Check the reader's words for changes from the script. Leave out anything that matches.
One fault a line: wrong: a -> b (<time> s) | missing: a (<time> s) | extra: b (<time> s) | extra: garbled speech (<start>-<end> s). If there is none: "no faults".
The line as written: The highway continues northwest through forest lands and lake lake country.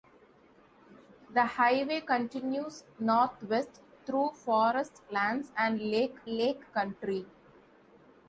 no faults